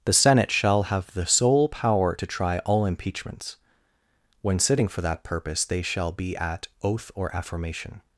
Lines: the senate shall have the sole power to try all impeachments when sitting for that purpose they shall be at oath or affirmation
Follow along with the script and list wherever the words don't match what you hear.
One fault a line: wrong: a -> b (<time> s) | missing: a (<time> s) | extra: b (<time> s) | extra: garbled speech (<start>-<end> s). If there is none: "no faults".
no faults